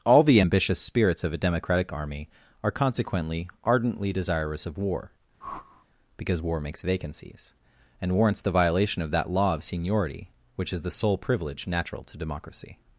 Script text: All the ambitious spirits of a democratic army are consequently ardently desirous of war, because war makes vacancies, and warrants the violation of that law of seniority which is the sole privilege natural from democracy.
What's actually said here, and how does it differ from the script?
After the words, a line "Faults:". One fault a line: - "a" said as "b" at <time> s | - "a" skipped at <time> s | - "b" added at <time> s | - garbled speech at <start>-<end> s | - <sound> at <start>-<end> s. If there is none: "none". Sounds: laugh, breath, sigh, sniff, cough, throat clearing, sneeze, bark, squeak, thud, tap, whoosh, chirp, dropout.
All the ambitious spirits of a democratic army are consequently ardently desirous of war, because war makes vacancies, and warrants the violation of that law of seniority which is the sole privilege natural to democracy.
Faults:
- whoosh at 5.4-5.9 s
- "from" said as "to" at 12.0 s